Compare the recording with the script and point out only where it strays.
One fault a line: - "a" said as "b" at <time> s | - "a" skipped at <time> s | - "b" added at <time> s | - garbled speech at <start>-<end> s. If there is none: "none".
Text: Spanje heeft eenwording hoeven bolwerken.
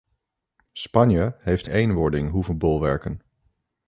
none